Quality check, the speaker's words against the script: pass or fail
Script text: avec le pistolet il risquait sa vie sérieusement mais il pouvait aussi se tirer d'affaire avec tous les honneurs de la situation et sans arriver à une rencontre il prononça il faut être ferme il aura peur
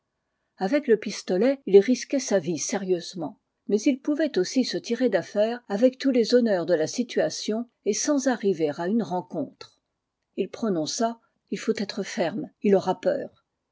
pass